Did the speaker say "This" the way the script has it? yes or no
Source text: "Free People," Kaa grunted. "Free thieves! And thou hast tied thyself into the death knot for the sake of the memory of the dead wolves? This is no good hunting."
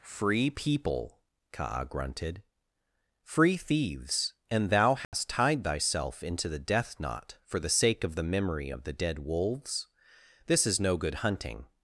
yes